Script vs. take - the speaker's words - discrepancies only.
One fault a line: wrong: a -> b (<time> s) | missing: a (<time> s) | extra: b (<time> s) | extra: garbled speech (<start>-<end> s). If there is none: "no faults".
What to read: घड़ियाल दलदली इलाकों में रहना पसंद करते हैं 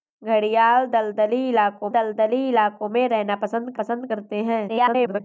extra: दलदली इलाकों (1.9 s)
extra: पसंद (3.7 s)
extra: garbled speech (4.7-5.2 s)